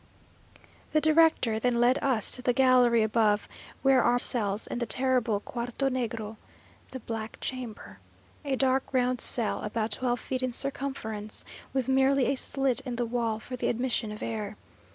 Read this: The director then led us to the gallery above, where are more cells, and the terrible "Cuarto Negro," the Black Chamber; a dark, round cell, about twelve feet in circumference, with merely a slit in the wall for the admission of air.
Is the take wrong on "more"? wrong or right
wrong